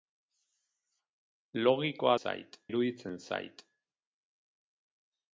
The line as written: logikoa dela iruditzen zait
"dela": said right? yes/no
no